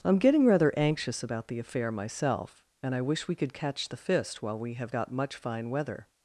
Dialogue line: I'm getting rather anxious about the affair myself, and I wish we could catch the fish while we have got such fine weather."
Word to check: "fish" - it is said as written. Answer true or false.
false